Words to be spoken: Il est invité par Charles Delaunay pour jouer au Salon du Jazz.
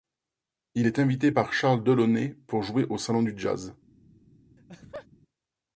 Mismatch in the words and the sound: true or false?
true